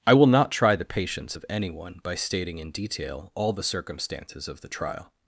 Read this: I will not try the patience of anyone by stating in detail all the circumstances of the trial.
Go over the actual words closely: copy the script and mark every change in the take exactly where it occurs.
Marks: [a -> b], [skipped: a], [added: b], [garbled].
I will not try the patience of anyone by stating in detail all the circumstances of the trial.